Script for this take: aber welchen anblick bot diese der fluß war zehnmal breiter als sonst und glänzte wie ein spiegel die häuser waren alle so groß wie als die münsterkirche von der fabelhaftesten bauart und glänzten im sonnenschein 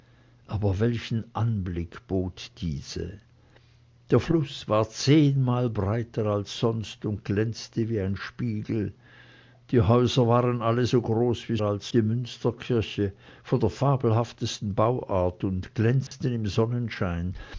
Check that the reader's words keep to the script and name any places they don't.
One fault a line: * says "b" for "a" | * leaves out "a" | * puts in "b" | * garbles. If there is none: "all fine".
all fine